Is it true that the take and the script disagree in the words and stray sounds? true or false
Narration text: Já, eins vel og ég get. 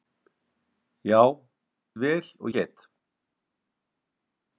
true